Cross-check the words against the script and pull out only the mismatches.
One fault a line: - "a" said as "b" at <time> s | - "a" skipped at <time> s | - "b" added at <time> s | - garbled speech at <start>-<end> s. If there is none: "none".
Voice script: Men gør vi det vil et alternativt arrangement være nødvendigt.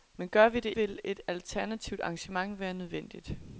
none